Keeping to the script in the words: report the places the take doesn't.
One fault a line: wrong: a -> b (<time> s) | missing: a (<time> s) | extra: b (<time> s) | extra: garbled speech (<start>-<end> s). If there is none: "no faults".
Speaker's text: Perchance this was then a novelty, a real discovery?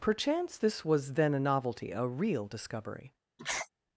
no faults